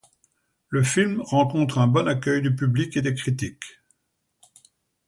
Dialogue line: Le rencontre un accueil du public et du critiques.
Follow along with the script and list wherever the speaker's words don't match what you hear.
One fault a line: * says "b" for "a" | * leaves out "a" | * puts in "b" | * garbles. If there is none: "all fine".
* puts in "film"
* puts in "bon"
* says "des" for "du"